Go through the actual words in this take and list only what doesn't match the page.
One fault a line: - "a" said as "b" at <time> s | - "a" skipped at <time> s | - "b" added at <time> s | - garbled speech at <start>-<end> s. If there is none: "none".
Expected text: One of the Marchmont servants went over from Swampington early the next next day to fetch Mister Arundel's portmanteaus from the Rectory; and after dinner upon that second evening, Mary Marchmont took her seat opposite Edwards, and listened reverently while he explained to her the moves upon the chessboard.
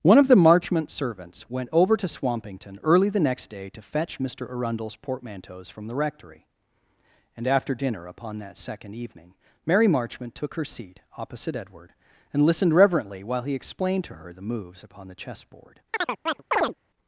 - "from" said as "to" at 1.9 s
- "next" skipped at 3.5 s
- "Edwards" said as "Edward" at 11.6 s